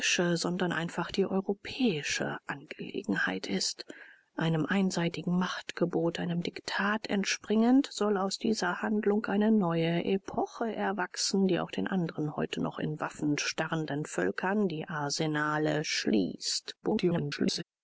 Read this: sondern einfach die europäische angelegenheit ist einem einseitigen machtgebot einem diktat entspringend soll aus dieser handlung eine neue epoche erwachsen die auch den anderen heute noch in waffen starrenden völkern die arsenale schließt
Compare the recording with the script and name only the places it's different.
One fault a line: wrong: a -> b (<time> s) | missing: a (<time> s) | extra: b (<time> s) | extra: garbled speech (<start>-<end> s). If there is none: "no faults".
extra: garbled speech (16.8-17.6 s)